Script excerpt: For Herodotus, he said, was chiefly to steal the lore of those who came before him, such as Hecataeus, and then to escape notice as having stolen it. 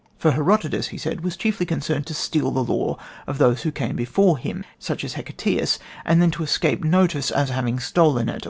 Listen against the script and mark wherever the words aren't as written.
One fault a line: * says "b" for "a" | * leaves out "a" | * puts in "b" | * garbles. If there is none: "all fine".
* puts in "concerned"